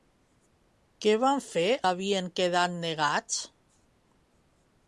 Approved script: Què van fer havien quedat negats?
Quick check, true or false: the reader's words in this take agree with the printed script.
true